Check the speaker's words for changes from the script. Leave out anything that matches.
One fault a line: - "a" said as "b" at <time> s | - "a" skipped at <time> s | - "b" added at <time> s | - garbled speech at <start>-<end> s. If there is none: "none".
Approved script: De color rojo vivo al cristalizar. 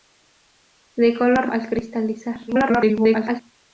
- "rojo vivo" skipped at 1.5 s
- garbled speech at 2.5-3.4 s